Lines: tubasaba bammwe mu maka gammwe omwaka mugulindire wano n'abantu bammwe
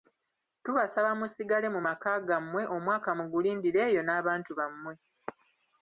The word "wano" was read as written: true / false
false